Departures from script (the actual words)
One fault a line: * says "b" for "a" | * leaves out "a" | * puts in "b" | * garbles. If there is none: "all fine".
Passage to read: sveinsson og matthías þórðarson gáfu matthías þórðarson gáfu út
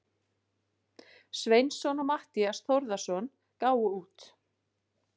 * leaves out "matthías þórðarson gáfu"